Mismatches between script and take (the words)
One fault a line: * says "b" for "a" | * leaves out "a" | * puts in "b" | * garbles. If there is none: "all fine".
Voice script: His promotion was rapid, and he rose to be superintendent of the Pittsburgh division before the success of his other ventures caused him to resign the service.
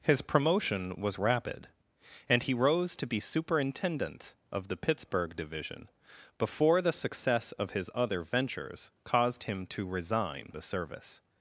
all fine